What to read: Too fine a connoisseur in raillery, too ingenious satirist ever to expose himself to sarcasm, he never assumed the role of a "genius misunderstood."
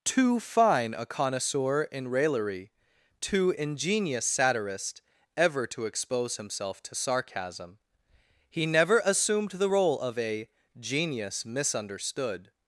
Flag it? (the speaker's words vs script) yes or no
no